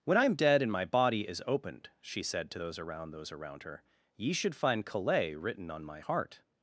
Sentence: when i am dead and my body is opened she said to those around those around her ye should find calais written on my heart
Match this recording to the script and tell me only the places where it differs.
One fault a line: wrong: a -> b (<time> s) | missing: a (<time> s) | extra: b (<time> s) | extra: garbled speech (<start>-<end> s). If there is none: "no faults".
no faults